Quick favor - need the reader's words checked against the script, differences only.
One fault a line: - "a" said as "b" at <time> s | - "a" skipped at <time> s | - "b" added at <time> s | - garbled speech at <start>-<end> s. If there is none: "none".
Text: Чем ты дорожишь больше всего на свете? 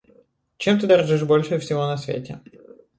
none